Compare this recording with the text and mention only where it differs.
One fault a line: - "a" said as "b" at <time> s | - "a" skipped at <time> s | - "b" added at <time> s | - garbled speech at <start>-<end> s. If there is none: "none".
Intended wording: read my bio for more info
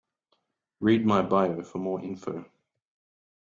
none